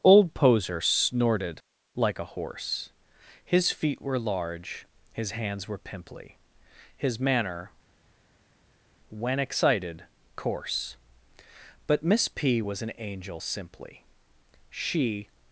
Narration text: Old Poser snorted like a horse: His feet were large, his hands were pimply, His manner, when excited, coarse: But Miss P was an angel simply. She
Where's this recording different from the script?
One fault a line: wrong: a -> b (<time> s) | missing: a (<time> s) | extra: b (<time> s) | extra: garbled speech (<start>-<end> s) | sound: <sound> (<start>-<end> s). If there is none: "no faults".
no faults